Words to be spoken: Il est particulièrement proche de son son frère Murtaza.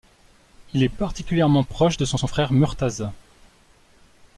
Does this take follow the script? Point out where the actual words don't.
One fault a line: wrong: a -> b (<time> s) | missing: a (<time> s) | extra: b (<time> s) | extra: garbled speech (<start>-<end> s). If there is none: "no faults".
no faults